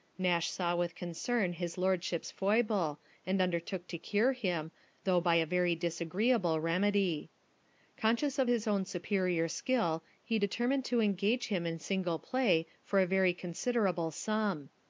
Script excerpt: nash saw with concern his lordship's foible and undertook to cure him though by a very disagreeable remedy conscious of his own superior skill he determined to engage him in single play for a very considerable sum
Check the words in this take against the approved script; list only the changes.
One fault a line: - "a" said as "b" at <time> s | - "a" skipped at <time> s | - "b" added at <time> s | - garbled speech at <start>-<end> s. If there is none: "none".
none